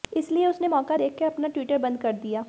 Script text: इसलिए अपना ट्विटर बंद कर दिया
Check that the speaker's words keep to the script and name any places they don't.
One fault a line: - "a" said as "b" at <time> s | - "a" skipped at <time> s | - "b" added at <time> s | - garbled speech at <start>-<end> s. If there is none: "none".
- "उसने मौका देखकर" added at 0.5 s